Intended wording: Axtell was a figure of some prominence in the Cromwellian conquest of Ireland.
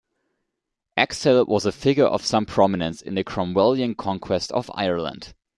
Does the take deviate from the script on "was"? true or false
false